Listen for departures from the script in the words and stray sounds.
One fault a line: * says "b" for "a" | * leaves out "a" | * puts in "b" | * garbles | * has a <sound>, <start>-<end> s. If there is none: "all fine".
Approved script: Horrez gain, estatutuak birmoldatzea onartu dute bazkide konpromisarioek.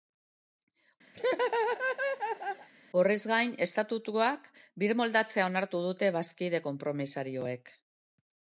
* has a laugh, 1.1-2.7 s